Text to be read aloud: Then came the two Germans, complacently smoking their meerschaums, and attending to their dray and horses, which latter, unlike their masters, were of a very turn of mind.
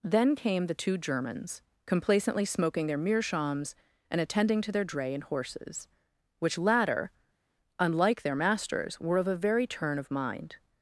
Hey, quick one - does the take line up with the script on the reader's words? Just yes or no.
yes